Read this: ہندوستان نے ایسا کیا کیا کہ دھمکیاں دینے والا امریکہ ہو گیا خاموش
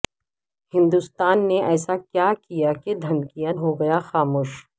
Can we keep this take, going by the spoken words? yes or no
no